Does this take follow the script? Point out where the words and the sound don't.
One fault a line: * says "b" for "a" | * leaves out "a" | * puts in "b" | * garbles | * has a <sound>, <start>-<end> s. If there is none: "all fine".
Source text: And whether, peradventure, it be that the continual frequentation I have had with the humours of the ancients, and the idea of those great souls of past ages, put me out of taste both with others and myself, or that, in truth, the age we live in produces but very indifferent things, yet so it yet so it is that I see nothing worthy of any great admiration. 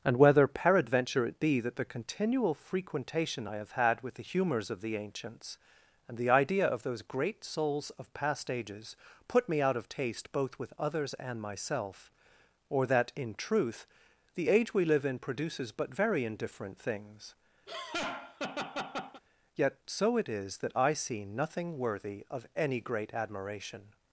* has a laugh, 17.7-19.2 s
* leaves out "yet so it"